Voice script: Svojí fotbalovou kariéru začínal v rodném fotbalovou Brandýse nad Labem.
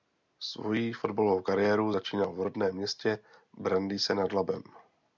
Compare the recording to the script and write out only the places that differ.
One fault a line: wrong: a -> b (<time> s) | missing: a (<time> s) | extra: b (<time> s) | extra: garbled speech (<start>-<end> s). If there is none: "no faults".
wrong: fotbalovou -> městě (2.7 s)